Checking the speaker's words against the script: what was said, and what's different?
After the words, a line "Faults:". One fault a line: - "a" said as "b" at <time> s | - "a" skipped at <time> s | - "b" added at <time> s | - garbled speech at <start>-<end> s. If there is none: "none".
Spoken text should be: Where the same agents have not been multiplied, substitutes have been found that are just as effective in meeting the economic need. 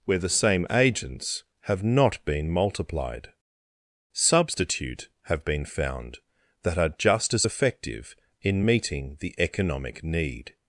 Where the same agents have not been multiplied, substitute have been found that are just as effective in meeting the economic need.
Faults:
- "substitutes" said as "substitute" at 4.1 s